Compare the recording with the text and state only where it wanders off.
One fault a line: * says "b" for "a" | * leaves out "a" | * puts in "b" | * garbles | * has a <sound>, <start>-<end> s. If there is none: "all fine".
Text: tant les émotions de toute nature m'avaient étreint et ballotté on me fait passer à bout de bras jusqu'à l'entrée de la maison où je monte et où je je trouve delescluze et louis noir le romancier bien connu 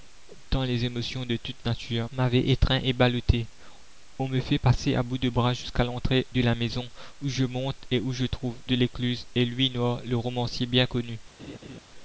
* leaves out "je"
* has a laugh, 11.4-11.8 s